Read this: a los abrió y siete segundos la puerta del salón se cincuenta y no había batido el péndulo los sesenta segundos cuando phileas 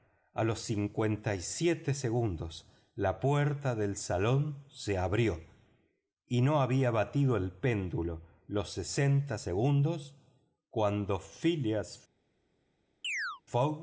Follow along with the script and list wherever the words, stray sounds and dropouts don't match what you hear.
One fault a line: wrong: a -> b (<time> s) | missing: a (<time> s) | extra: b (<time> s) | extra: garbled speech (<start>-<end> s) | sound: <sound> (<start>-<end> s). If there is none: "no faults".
wrong: abrió -> cincuenta (0.6 s)
wrong: cincuenta -> abrió (5.0 s)
sound: chirp (13.0-13.4 s)